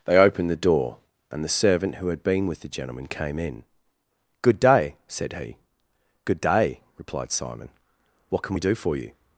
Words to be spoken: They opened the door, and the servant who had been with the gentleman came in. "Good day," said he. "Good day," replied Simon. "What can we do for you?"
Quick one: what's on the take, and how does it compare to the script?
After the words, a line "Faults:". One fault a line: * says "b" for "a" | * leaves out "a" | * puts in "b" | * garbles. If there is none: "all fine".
They opened the door, and the servant who had been with the gentleman came in. "Good day," said he. "Good day," replied Simon. "What can we do for you?"
Faults:
all fine